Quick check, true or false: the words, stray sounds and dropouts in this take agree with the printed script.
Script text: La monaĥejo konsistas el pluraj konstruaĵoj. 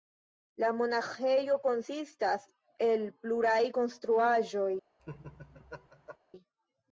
false